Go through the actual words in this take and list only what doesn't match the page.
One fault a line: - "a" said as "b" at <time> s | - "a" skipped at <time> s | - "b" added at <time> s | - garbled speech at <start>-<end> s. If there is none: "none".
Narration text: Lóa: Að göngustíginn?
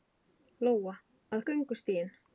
none